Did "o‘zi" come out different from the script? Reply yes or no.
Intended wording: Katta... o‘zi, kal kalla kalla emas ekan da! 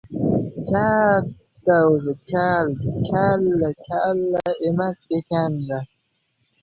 no